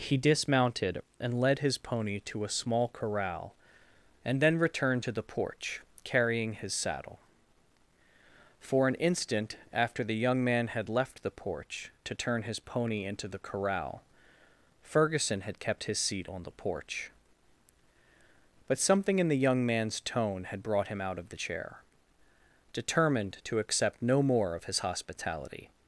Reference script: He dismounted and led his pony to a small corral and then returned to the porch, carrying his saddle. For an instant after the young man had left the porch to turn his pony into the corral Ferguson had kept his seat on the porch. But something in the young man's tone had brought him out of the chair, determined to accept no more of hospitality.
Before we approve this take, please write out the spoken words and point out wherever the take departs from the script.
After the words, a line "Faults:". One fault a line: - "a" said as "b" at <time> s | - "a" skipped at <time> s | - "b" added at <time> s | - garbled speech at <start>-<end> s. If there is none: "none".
He dismounted and led his pony to a small corral and then returned to the porch, carrying his saddle. For an instant after the young man had left the porch to turn his pony into the corral Ferguson had kept his seat on the porch. But something in the young man's tone had brought him out of the chair, determined to accept no more of his hospitality.
Faults:
- "his" added at 24.6 s